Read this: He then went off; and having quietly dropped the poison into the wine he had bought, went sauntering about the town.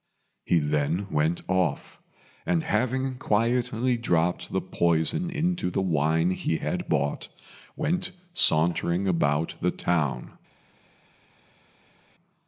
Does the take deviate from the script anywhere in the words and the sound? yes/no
no